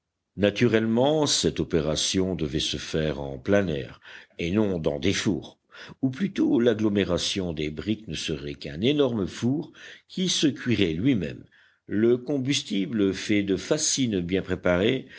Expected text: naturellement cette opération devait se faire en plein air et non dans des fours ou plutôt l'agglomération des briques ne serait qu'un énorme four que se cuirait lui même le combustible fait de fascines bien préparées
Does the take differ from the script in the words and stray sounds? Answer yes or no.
yes